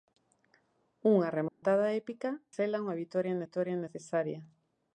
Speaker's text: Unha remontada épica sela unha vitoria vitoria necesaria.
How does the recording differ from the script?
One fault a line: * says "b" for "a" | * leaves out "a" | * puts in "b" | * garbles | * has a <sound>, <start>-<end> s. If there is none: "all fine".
* has a dropout, 1.5-1.6 s